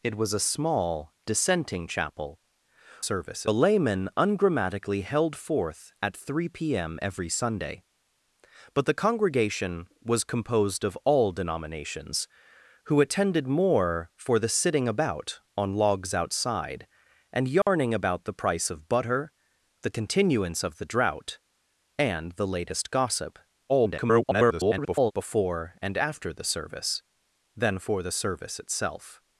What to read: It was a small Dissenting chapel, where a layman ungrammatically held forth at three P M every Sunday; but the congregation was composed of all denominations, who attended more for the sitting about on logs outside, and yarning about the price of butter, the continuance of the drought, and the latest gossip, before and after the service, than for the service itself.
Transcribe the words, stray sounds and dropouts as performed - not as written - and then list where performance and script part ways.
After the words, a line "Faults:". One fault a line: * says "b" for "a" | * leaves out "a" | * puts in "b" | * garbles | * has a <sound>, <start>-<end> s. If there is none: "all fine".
It was a small Dissenting chapel, service a layman ungrammatically held forth at three P M every Sunday; but the congregation was composed of all denominations, who attended more for the sitting about on logs outside, and yarning about the price of butter, the continuance of the drought, and the latest gossip, [garbled] before and after the service, than for the service itself.
Faults:
* says "service" for "where"
* has a dropout, 17.6-17.7 s
* garbles